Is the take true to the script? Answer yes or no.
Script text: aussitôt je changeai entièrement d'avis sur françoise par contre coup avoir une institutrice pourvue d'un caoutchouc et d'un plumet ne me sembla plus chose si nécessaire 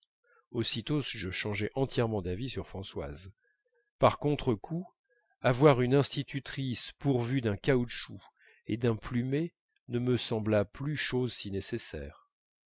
yes